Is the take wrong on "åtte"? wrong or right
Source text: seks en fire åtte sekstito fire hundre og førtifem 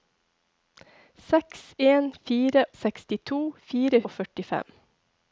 wrong